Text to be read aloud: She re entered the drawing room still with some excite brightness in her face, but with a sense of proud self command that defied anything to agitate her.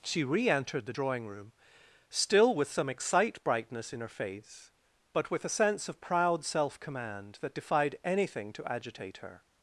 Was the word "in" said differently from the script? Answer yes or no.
no